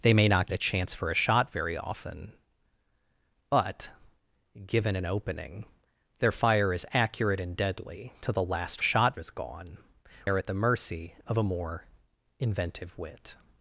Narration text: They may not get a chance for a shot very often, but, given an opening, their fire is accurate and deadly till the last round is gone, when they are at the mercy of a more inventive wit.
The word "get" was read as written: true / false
false